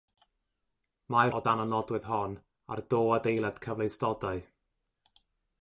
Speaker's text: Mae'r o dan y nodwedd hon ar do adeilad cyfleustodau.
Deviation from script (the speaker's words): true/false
false